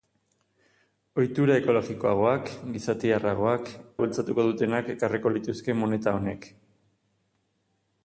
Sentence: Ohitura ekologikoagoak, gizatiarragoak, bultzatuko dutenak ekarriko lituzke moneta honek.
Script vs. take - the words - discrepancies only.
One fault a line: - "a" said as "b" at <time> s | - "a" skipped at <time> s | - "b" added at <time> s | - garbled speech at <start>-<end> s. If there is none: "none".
none